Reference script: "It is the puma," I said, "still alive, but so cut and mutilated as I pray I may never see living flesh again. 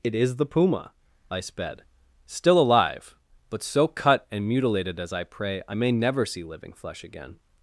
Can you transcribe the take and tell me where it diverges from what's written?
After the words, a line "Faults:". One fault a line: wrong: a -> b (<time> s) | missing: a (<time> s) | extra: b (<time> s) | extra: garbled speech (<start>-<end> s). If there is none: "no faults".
"It is the puma," I sped, "still alive, but so cut and mutilated as I pray I may never see living flesh again.
Faults:
wrong: said -> sped (1.4 s)